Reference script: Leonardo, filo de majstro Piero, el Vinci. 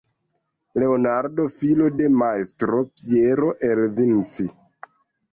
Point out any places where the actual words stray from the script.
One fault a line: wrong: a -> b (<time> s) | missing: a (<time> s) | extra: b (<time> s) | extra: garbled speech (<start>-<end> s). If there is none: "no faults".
no faults